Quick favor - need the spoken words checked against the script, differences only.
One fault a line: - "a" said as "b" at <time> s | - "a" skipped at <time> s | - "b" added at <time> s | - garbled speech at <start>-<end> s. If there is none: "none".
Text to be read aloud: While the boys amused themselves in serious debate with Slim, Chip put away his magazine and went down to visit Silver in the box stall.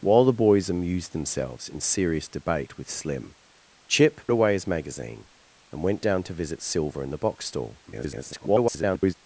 - "put" skipped at 4.3 s
- garbled speech at 7.9-9.1 s